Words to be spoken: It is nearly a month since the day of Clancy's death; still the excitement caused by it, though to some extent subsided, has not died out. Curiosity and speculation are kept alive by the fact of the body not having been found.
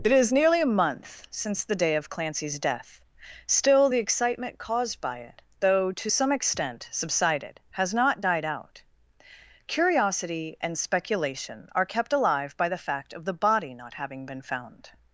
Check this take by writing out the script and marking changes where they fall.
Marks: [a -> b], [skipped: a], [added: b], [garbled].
It is nearly a month since the day of Clancy's death; still the excitement caused by it, though to some extent subsided, has not died out. Curiosity and speculation are kept alive by the fact of the body not having been found.